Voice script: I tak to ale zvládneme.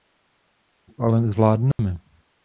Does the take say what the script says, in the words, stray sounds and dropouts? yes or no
no